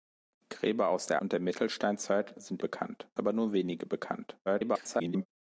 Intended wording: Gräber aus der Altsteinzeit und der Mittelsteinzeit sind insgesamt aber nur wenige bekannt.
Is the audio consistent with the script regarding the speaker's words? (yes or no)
no